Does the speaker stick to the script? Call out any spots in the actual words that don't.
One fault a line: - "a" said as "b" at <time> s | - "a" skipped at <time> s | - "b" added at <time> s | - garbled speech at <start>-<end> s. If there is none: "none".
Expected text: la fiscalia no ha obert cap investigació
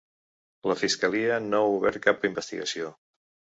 none